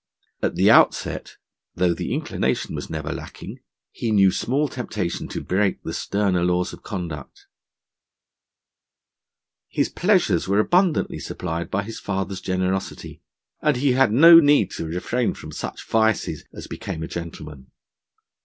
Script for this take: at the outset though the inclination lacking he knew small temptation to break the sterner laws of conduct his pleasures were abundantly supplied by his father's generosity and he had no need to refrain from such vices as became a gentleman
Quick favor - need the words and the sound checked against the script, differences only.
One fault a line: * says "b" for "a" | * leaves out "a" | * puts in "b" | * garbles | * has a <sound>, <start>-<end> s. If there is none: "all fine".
* puts in "was never"